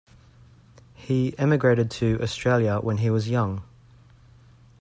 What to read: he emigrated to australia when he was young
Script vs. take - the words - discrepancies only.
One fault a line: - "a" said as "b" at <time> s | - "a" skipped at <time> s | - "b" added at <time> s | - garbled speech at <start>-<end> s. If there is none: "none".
none